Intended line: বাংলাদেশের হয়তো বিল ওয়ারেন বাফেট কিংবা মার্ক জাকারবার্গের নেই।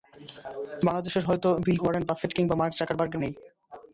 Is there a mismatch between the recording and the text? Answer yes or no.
no